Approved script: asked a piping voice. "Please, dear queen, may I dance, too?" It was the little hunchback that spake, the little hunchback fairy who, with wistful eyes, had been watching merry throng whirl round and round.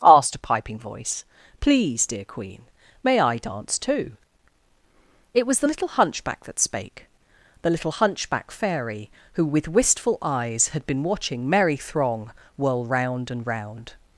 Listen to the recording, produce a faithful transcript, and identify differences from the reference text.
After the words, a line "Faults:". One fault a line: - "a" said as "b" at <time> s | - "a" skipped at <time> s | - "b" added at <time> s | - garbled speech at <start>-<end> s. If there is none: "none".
asked a piping voice. "Please, dear queen, may I dance, too?" It was the little hunchback that spake, the little hunchback fairy who, with wistful eyes, had been watching merry throng whirl round and round.
Faults:
none